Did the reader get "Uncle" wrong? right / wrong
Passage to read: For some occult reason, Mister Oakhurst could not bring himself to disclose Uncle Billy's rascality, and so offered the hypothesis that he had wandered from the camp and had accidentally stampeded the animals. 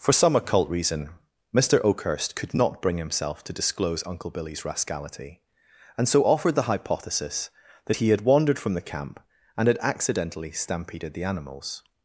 right